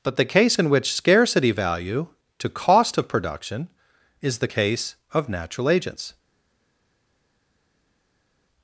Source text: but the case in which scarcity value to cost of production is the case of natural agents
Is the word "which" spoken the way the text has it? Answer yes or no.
yes